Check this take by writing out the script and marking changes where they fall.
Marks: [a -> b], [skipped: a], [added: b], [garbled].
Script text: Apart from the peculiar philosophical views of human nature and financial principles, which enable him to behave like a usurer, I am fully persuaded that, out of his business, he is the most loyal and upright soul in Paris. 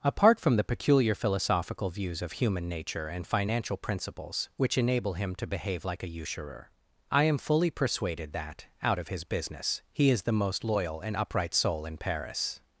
Apart from the peculiar philosophical views of human nature and financial principles, which enable him to behave like a usurer, I am fully persuaded that, out of his business, he is the most loyal and upright soul in Paris.